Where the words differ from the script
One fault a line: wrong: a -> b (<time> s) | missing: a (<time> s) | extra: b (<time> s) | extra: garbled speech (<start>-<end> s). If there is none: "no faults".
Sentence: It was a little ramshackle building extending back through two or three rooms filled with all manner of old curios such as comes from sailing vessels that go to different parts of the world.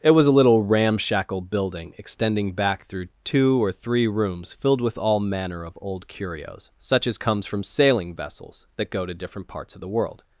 no faults